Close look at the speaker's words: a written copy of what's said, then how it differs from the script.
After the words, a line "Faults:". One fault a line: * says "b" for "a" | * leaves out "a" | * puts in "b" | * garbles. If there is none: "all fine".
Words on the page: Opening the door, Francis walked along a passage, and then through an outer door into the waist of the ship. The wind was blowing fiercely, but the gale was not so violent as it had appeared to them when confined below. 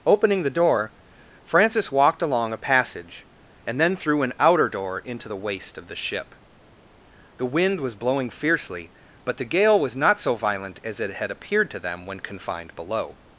Opening the door, Francis walked along a passage, and then through an outer door into the waist of the ship. The wind was blowing fiercely, but the gale was not so violent as it had appeared to them when confined below.
Faults:
all fine